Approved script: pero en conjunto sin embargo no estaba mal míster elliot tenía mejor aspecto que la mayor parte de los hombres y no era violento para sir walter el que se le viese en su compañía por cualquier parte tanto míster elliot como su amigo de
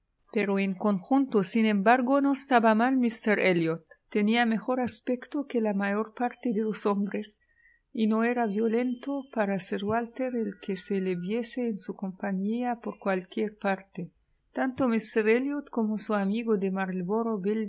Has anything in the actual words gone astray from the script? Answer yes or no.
no